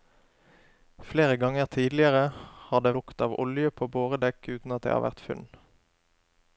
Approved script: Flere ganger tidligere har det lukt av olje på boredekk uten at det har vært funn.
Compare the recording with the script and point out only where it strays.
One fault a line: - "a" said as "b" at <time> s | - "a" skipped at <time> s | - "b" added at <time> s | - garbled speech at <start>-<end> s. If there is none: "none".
none